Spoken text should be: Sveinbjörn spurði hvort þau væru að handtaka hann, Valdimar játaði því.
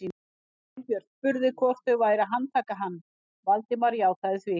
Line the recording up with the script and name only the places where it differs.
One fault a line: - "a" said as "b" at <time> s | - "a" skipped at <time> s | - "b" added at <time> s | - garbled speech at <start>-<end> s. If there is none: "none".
none